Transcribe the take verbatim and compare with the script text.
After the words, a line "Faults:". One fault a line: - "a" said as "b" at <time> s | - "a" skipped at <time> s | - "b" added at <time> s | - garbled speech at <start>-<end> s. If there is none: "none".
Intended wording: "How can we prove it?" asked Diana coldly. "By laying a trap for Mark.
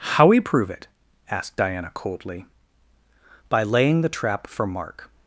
"How we prove it?" asked Diana coldly. "By laying the trap for Mark.
Faults:
- "can" skipped at 0.2 s
- "a" said as "the" at 4.0 s